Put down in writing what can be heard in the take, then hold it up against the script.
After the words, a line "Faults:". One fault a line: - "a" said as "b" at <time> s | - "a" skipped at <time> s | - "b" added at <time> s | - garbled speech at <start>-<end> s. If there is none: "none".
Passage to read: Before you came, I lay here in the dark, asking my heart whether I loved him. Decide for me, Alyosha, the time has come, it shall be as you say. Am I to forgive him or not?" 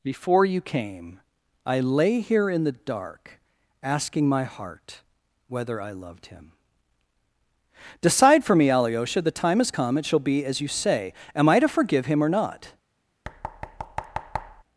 Before you came, I lay here in the dark, asking my heart whether I loved him. Decide for me, Alyosha, the time has come, it shall be as you say. Am I to forgive him or not?"
Faults:
none